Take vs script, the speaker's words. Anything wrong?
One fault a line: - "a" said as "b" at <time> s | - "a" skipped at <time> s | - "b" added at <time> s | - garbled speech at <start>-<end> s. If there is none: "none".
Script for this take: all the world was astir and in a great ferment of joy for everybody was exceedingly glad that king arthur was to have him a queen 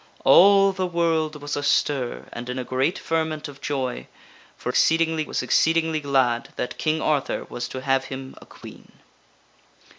- "everybody" said as "exceedingly" at 4.7 s